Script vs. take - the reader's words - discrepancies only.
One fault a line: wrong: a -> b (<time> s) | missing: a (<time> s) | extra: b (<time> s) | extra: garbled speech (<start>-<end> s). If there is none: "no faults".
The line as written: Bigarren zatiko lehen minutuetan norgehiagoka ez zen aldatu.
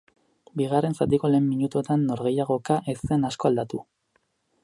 extra: asko (3.3 s)